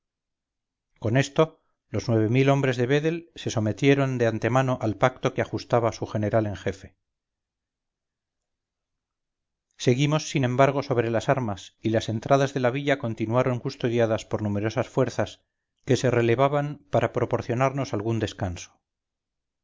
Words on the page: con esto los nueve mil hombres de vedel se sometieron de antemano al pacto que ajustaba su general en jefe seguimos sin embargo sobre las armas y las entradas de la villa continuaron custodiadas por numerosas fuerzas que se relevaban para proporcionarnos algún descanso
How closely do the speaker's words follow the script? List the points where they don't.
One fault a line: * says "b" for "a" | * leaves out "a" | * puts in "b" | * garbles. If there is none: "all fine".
all fine